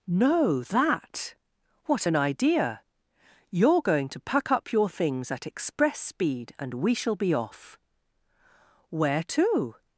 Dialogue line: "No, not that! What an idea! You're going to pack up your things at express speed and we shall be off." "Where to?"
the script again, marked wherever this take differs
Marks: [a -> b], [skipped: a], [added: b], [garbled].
"No, [skipped: not] that! What an idea! You're going to pack up your things at express speed and we shall be off." "Where to?"